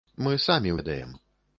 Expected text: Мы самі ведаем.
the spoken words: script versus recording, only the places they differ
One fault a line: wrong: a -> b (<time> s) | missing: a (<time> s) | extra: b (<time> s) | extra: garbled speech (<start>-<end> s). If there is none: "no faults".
no faults